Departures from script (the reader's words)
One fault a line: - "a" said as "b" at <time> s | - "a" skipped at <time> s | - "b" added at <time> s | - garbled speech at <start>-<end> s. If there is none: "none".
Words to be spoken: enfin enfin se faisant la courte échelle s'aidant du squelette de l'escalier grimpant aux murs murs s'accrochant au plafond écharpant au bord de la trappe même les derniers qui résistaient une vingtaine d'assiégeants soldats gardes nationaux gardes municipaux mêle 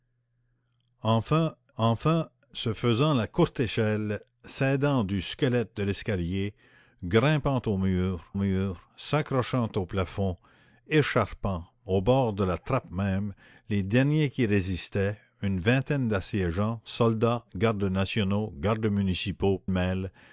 none